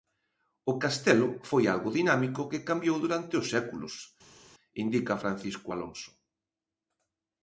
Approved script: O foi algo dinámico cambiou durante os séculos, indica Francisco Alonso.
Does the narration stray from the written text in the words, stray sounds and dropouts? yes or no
yes